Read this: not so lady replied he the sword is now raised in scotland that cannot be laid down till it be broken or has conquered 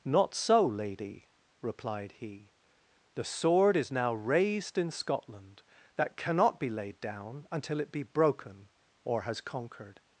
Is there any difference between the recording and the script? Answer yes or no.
yes